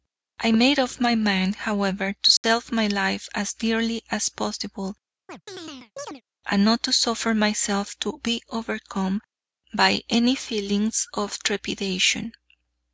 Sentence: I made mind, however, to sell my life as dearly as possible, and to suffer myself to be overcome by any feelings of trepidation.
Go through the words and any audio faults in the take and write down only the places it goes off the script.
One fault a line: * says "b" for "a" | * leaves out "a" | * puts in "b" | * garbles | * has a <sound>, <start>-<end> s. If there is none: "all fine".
* puts in "up my"
* has a dropout, 2.4-2.4 s
* has a chirp, 5.3-6.2 s
* puts in "not"